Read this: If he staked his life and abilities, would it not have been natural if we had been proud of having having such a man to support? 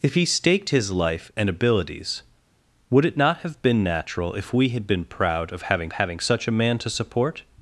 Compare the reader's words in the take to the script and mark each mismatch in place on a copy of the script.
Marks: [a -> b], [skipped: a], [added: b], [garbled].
If he staked his life and abilities, would it not have been natural if we had been proud of having having such a man to support?